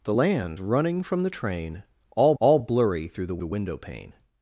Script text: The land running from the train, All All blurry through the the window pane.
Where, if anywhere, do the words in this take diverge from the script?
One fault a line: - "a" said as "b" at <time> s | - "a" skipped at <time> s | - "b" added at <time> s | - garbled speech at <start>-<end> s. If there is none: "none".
none